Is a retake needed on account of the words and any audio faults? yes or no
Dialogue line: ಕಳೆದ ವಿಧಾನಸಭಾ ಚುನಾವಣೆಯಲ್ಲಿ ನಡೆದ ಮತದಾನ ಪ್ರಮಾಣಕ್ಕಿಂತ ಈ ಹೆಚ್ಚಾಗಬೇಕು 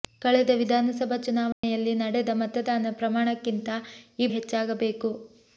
yes